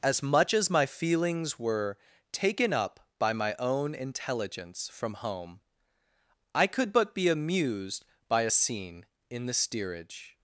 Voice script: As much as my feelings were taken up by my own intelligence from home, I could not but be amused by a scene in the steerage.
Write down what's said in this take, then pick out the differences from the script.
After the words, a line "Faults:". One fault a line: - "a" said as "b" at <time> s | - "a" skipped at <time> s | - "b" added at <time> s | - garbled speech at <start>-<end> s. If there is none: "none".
As much as my feelings were taken up by my own intelligence from home, I could but be amused by a scene in the steerage.
Faults:
- "not" skipped at 6.9 s